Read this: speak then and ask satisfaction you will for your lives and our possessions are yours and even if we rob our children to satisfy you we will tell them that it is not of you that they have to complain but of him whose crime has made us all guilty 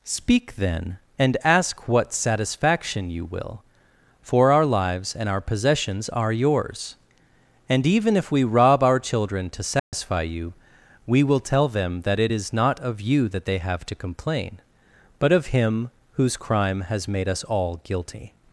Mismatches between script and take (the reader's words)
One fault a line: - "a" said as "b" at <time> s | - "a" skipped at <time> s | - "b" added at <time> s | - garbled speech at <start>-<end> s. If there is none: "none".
- "what" added at 1.9 s
- "your" said as "our" at 4.5 s